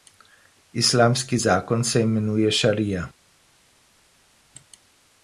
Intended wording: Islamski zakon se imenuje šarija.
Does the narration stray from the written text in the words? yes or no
no